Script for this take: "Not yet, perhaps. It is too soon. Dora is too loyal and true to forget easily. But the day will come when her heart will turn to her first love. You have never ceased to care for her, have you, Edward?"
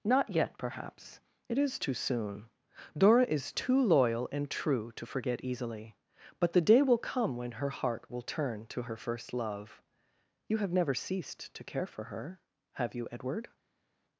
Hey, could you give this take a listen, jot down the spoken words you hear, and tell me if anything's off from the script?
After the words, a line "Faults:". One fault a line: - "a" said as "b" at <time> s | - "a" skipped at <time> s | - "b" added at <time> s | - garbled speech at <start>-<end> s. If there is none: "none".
"Not yet, perhaps. It is too soon. Dora is too loyal and true to forget easily. But the day will come when her heart will turn to her first love. You have never ceased to care for her, have you, Edward?"
Faults:
none